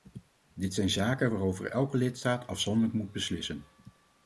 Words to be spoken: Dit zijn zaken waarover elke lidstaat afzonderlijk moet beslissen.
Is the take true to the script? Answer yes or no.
yes